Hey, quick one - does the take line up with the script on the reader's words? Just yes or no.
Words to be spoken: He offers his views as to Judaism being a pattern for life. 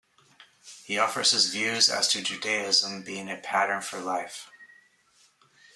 yes